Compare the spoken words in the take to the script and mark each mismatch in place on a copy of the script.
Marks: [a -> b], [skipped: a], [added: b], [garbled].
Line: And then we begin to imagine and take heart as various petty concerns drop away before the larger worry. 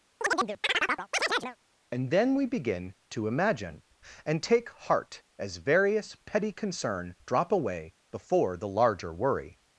And then we begin to imagine and take heart as various petty [concerns -> concern] drop away before the larger worry.